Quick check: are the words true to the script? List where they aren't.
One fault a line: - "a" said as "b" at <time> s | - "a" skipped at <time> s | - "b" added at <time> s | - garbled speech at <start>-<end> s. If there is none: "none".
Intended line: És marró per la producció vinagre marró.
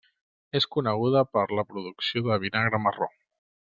- "marró" said as "coneguda" at 0.8 s
- "de" added at 2.3 s